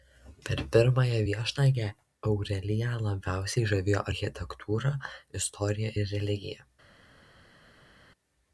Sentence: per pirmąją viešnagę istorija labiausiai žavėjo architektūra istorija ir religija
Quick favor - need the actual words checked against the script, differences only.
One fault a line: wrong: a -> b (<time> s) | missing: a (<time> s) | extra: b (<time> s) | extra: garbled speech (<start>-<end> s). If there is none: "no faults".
wrong: istorija -> aureliją (2.3 s)